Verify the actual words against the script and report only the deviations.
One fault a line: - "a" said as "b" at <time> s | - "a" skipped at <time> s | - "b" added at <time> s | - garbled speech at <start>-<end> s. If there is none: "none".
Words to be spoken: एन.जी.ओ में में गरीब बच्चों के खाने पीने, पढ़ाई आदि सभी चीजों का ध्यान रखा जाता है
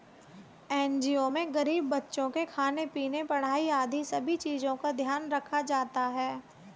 - "में" skipped at 1.5 s